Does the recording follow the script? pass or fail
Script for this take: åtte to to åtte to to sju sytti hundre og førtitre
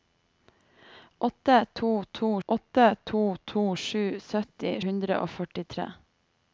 pass